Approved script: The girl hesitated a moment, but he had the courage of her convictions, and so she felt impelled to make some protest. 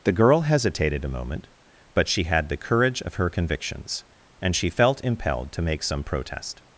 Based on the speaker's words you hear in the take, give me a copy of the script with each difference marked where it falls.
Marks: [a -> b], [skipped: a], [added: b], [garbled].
The girl hesitated a moment, but [he -> she] had the courage of her convictions, and [skipped: so] she felt impelled to make some protest.